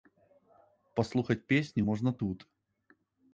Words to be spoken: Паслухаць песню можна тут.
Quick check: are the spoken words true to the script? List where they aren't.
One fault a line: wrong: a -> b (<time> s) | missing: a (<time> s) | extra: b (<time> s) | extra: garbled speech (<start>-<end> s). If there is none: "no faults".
no faults